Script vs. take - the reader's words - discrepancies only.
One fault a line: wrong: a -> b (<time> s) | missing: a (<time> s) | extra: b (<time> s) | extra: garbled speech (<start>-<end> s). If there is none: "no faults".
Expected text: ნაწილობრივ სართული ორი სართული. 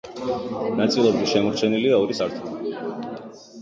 wrong: სართული -> შემორჩენილია (1.3 s)